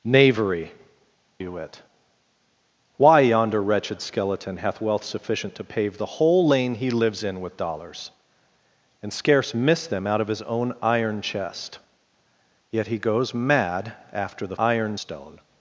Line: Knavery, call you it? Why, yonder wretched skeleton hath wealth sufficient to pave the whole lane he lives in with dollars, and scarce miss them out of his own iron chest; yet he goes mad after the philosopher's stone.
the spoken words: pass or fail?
fail